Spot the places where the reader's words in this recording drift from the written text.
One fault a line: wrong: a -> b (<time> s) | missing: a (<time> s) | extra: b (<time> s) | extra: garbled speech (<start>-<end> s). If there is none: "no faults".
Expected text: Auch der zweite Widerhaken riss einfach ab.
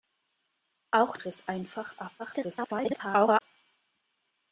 missing: der zweite Widerhaken (1.1 s)
extra: garbled speech (2.2-3.4 s)